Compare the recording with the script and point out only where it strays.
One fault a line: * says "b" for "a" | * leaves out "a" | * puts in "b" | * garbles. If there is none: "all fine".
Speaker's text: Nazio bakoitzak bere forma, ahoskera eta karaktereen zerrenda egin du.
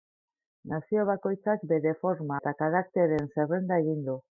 * leaves out "ahoskera"